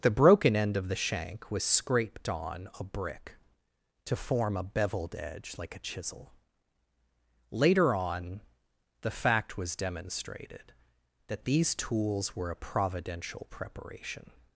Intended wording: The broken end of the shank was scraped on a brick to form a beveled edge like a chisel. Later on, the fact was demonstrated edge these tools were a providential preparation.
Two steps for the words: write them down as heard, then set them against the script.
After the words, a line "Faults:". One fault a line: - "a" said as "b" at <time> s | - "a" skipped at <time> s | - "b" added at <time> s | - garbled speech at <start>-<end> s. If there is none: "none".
The broken end of the shank was scraped on a brick to form a beveled edge like a chisel. Later on, the fact was demonstrated that these tools were a providential preparation.
Faults:
- "edge" said as "that" at 11.3 s